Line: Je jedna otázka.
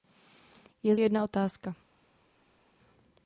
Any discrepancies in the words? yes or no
no